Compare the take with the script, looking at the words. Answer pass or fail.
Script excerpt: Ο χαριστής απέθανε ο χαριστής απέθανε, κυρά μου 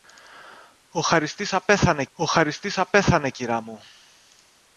pass